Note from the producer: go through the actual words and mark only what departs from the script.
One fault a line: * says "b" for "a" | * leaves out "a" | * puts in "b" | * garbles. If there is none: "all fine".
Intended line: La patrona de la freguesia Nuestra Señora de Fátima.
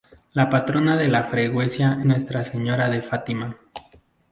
all fine